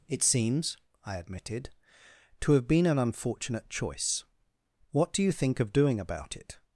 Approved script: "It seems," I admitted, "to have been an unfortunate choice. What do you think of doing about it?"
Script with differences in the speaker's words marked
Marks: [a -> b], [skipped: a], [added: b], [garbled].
"It seems," I admitted, "to have been an unfortunate choice. What do you think of doing about it?"